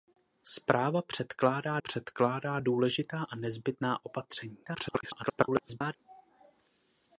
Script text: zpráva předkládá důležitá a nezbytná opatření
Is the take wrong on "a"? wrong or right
right